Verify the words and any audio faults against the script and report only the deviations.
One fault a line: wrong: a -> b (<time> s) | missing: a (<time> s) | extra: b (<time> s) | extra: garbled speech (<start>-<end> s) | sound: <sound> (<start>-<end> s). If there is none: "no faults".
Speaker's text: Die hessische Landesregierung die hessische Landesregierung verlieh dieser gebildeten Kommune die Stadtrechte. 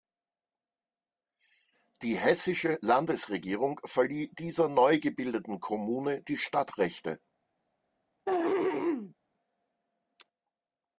missing: die hessische Landesregierung (3.8 s)
extra: neu (4.7 s)
sound: throat clearing (8.3-9.1 s)